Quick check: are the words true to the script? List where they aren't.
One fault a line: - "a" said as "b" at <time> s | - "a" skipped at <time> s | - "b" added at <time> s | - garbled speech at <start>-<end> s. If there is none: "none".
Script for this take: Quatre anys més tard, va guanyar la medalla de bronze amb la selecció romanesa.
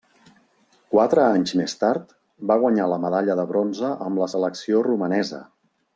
none